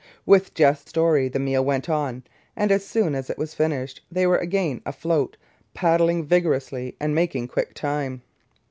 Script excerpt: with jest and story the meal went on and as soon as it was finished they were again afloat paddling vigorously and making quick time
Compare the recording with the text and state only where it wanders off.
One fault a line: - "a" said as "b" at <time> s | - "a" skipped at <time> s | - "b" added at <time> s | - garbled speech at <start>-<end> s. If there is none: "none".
- "and" skipped at 0.9 s